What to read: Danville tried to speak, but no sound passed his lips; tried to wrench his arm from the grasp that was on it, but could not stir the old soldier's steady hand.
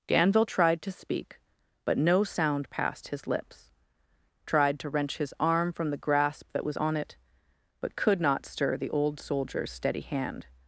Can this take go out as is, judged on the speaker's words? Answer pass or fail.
pass